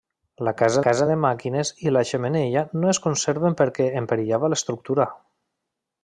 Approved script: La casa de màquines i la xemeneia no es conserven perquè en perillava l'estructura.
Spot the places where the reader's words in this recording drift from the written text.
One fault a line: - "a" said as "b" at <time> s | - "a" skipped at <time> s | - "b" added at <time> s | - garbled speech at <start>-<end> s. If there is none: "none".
- "casa" added at 0.9 s